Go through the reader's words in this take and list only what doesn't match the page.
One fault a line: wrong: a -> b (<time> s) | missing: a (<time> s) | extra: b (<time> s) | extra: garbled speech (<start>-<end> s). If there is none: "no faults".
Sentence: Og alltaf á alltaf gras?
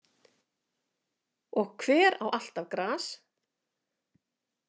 wrong: alltaf -> hver (1.8 s)